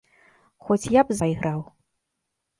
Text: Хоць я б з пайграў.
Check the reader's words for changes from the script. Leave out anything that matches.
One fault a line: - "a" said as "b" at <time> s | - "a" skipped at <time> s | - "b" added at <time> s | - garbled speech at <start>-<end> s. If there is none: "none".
none